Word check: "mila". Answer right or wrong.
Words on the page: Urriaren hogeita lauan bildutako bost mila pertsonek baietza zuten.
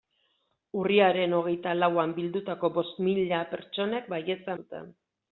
right